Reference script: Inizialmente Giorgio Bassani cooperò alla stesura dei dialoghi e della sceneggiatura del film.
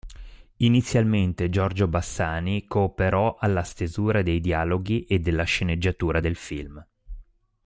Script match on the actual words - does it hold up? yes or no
yes